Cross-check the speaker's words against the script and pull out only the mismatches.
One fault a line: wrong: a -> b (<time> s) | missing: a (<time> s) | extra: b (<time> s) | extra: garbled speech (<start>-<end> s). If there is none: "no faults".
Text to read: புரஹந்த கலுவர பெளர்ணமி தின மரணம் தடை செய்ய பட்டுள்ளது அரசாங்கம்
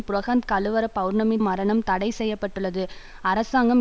missing: தின (1.4 s)